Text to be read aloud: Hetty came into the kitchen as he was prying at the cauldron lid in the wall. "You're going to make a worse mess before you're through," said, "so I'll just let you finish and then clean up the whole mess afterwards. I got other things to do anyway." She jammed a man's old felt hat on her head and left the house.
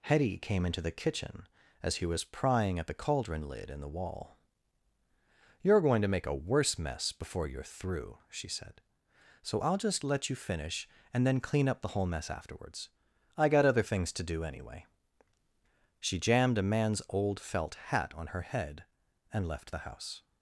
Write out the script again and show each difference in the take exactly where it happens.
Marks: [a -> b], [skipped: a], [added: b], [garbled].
Hetty came into the kitchen as he was prying at the cauldron lid in the wall. "You're going to make a worse mess before you're through," [added: she] said, "so I'll just let you finish and then clean up the whole mess afterwards. I got other things to do anyway." She jammed a man's old felt hat on her head and left the house.